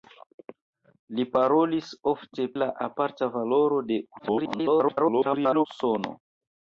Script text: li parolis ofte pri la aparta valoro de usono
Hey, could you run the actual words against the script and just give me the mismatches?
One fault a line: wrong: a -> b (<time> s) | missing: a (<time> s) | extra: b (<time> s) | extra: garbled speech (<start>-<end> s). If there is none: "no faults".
missing: pri (2.5 s)
extra: garbled speech (4.2-5.7 s)